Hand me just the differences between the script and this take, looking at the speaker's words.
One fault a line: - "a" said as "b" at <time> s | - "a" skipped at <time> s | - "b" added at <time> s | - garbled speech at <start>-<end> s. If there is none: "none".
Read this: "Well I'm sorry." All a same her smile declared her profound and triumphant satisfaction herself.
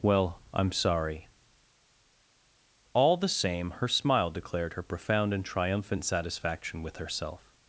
- "a" said as "the" at 3.2 s
- "with" added at 6.8 s